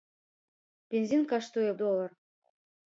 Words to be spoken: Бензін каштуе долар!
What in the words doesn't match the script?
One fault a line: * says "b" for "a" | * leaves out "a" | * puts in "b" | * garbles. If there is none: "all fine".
all fine